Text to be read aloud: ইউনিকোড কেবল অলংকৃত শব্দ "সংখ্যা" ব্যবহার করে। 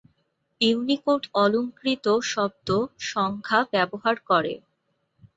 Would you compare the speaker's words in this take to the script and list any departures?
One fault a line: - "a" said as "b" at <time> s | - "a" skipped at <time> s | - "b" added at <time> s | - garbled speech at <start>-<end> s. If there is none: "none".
- "কেবল" skipped at 1.2 s